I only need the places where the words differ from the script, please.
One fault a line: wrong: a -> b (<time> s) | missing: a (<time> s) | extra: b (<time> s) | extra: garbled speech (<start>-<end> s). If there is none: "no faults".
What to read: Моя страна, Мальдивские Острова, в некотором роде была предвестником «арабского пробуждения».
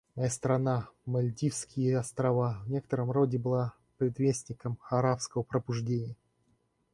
no faults